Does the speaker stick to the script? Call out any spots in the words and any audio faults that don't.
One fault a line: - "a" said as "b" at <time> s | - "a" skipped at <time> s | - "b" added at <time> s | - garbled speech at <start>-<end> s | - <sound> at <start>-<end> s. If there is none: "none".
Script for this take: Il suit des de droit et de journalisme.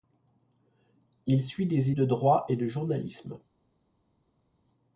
none